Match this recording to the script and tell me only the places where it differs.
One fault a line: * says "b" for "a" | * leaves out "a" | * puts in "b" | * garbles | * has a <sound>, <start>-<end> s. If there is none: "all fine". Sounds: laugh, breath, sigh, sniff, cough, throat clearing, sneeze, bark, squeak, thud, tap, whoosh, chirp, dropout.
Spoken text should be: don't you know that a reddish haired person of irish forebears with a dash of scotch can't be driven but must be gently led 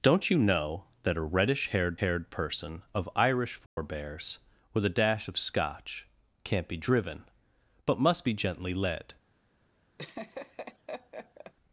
* puts in "haired"
* has a dropout, 3.7-3.8 s
* has a laugh, 10.0-11.5 s